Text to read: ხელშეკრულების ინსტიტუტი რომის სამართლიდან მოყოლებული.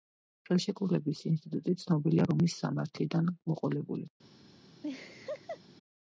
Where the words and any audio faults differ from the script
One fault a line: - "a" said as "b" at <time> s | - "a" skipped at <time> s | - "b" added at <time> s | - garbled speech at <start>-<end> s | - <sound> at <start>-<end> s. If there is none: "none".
- "ცნობილია" added at 1.8 s
- laugh at 4.8-5.6 s